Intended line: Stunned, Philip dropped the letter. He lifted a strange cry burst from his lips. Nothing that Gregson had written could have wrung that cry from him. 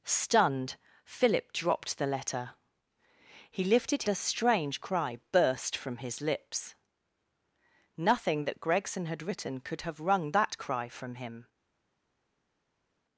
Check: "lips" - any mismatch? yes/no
no